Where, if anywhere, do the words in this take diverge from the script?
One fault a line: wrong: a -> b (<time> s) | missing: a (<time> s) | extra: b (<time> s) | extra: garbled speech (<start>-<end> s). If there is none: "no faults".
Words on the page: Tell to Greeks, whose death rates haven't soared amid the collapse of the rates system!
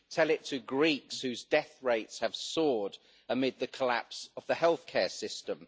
extra: it (0.3 s)
wrong: haven't -> have (2.2 s)
wrong: rates -> healthcare (4.5 s)